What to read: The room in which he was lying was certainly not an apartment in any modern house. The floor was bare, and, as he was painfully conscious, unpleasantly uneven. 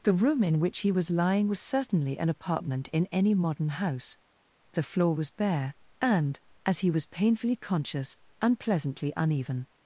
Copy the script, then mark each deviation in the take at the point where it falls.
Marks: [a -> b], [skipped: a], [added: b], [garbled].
The room in which he was lying was certainly [skipped: not] an apartment in any modern house. The floor was bare, and, as he was painfully conscious, unpleasantly uneven.